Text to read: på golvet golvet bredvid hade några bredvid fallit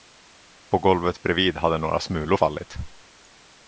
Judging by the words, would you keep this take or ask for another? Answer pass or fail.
fail